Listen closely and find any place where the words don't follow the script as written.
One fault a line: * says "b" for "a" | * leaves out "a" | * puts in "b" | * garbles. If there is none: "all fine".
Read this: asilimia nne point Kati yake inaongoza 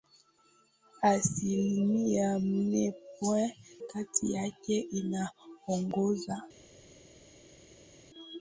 all fine